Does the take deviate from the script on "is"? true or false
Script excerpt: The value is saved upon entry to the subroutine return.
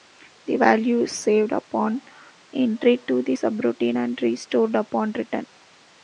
false